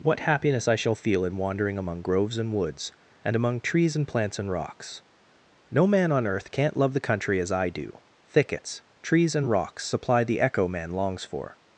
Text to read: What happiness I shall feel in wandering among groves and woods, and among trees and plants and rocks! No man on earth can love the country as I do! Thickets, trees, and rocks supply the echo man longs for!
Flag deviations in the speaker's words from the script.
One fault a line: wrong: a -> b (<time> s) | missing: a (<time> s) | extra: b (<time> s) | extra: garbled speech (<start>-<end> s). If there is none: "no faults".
wrong: can -> can't (6.5 s)